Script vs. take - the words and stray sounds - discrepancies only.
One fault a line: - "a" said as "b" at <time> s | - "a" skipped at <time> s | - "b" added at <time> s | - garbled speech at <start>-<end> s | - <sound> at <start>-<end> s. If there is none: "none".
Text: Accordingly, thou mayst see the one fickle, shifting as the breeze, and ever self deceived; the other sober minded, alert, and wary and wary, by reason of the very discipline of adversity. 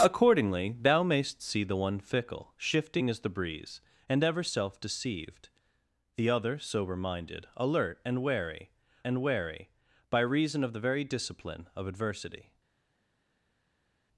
none